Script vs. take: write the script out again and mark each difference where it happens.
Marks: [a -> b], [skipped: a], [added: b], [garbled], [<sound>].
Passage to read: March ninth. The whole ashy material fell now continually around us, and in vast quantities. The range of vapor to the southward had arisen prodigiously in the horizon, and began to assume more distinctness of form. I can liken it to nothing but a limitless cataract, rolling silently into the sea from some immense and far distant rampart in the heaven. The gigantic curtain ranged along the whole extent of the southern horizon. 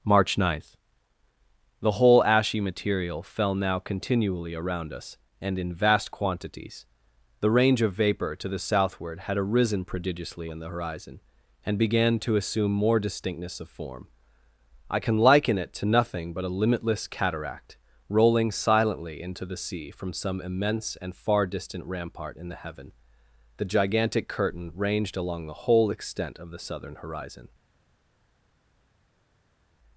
March ninth. The whole ashy material fell now continually around us, and in vast quantities. The range of vapor to the southward had arisen prodigiously in the horizon, and began to assume more distinctness of form. I can liken it to nothing but a limitless cataract, rolling silently into the sea from some immense and far distant rampart in the heaven. The gigantic curtain ranged along the whole extent of the southern horizon.